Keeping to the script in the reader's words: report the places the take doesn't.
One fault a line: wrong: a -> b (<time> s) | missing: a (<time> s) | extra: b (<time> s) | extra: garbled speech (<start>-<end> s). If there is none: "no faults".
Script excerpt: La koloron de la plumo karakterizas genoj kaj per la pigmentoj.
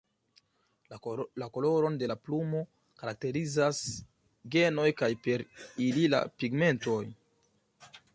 extra: ili (5.9 s)